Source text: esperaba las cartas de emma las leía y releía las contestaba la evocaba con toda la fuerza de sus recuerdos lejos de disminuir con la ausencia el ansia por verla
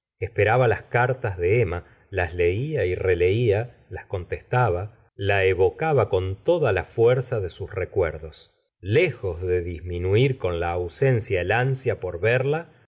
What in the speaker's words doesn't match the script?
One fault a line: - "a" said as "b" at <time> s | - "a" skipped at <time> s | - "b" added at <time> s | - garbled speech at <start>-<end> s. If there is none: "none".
none